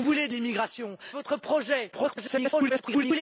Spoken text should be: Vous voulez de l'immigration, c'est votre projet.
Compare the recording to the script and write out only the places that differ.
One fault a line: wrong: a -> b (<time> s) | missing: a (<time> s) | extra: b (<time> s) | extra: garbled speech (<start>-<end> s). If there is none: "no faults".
missing: c'est (1.0 s)
extra: garbled speech (1.9-3.2 s)